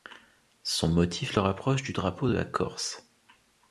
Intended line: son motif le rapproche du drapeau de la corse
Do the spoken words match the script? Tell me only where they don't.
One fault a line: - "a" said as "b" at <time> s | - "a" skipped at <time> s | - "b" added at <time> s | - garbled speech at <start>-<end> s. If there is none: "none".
none